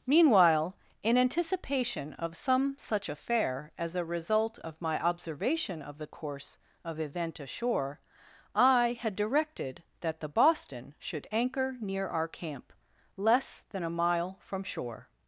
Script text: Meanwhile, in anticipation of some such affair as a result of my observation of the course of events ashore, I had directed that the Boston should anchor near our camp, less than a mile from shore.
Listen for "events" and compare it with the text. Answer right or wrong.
wrong